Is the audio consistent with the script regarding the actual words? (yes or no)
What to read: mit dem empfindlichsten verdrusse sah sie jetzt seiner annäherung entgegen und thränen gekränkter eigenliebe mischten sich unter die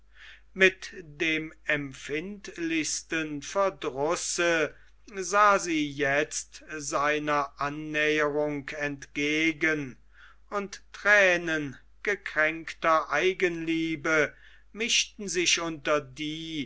yes